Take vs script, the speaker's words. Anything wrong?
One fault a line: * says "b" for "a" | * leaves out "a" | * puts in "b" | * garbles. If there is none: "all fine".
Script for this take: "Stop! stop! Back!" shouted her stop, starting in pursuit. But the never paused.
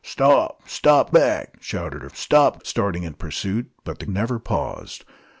all fine